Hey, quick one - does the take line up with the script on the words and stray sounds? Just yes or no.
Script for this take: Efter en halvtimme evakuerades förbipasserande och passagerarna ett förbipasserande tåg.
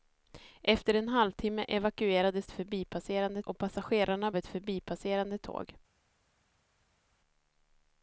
yes